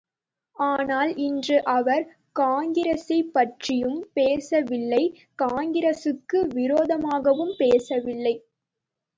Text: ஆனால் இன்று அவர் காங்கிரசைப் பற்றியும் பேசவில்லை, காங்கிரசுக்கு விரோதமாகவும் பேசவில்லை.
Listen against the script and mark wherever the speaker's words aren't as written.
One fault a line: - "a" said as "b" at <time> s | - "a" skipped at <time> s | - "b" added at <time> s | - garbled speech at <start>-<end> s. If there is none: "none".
none